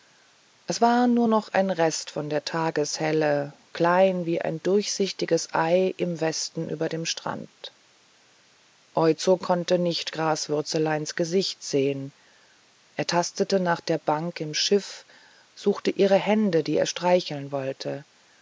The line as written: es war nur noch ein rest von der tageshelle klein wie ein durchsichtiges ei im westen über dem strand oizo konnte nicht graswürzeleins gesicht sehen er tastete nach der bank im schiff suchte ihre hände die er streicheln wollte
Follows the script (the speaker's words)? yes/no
yes